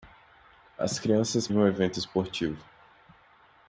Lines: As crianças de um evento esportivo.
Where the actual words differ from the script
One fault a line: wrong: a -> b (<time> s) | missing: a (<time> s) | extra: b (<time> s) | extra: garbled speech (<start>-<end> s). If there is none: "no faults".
no faults